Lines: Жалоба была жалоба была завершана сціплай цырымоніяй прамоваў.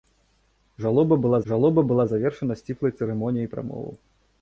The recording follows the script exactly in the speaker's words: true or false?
true